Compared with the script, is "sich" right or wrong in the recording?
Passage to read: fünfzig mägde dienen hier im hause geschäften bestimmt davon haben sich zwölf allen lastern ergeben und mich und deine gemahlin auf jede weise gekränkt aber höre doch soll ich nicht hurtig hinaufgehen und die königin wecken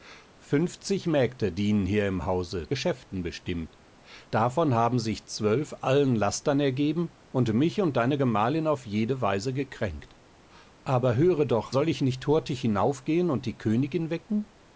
right